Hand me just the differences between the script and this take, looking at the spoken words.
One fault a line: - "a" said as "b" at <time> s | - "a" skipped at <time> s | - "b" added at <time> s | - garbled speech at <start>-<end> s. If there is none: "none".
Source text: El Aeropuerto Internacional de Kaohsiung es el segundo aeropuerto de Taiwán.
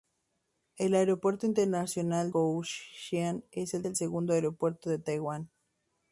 - "de" skipped at 2.3 s
- "el" added at 3.8 s